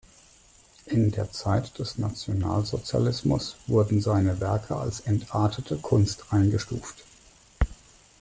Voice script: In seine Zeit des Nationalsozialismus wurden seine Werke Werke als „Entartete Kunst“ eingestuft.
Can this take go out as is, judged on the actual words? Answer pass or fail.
fail